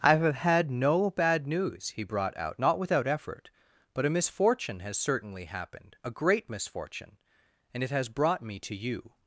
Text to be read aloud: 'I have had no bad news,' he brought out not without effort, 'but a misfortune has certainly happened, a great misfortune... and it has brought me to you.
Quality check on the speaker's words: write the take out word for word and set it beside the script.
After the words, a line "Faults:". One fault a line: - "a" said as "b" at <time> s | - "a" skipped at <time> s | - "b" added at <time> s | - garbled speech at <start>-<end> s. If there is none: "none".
'I have had no bad news,' he brought out not without effort, 'but a misfortune has certainly happened, a great misfortune... and it has brought me to you.
Faults:
none